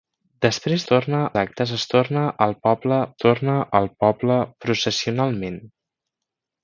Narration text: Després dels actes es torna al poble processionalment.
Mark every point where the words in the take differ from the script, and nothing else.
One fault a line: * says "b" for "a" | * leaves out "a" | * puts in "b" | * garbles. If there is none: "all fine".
* says "torna" for "dels"
* puts in "torna al poble"